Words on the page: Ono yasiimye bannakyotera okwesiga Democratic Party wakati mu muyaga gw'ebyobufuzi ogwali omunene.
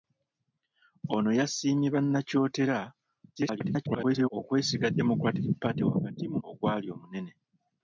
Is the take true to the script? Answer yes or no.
no